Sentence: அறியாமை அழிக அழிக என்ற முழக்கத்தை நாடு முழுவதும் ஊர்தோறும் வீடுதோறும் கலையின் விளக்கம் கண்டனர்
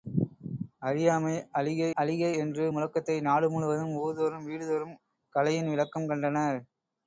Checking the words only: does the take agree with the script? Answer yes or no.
yes